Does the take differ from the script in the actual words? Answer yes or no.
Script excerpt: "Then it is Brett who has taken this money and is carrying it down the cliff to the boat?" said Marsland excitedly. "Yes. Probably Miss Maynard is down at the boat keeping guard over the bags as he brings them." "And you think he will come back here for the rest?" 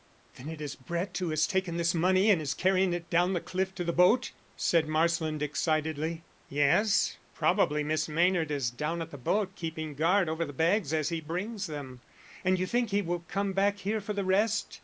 no